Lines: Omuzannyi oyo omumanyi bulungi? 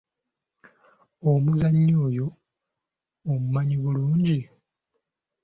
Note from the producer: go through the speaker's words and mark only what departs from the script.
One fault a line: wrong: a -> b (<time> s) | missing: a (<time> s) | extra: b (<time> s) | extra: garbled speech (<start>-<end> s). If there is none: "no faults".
no faults